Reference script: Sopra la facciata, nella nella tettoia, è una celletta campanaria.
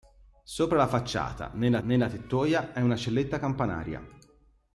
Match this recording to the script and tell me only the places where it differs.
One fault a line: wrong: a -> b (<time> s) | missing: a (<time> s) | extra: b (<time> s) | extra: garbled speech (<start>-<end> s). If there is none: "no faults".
no faults